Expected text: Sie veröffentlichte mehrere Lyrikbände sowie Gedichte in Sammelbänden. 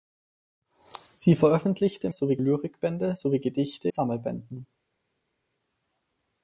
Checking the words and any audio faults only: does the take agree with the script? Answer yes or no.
no